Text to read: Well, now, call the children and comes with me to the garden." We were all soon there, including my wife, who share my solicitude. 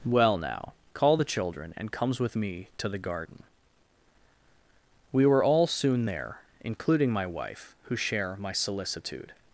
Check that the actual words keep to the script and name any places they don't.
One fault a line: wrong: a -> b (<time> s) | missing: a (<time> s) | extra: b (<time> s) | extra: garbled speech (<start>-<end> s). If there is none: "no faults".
no faults